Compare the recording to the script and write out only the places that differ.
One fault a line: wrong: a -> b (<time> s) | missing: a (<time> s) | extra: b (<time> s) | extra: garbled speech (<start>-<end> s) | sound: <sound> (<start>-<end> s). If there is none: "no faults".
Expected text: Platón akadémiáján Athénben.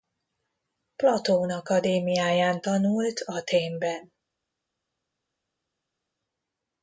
extra: tanult (2.6 s)